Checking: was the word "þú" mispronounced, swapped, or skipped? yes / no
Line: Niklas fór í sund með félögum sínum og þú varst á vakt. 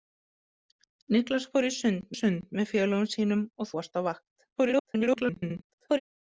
yes